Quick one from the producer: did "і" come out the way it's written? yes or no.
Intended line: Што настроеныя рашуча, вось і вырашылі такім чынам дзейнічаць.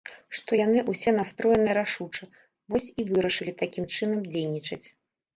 yes